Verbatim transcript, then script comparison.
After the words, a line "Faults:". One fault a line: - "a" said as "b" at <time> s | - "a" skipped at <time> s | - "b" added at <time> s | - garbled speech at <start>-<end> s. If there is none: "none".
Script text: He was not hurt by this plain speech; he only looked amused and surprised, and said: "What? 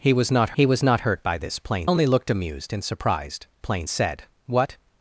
He was not he was not hurt by this plain only looked amused and surprised, plain said: "What?
Faults:
- "he was not" added at 0.5 s
- "speech he" skipped at 1.9 s
- "and" said as "plain" at 3.6 s